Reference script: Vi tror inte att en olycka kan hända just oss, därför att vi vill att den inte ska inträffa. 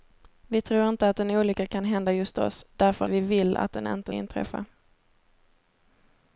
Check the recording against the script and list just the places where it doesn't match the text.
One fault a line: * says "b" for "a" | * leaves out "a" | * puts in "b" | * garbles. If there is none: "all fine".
* leaves out "att"
* leaves out "ska"